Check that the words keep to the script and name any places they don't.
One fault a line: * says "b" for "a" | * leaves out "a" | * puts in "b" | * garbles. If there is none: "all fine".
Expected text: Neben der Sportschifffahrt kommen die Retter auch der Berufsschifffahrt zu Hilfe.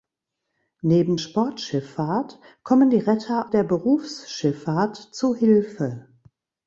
* leaves out "der"
* leaves out "auch"